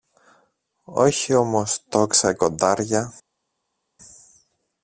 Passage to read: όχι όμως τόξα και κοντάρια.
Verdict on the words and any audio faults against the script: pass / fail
fail